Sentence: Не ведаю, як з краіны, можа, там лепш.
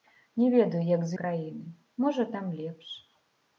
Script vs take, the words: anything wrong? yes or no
no